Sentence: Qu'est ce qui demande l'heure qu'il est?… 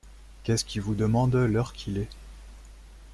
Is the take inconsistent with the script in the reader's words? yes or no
yes